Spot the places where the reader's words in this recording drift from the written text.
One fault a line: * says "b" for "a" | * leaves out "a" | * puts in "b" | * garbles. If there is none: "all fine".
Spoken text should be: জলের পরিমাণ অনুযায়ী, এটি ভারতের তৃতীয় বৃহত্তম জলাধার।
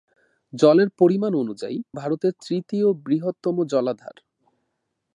* leaves out "এটি"